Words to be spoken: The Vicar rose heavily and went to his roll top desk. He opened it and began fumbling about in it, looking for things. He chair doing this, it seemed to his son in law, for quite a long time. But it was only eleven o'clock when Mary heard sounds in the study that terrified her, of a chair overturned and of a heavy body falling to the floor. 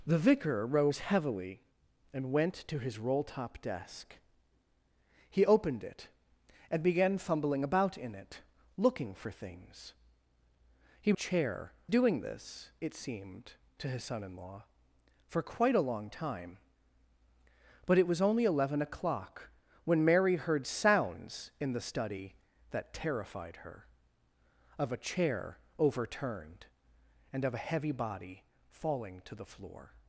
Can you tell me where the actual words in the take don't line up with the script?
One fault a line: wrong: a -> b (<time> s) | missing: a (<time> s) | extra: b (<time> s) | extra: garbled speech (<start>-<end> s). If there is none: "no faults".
no faults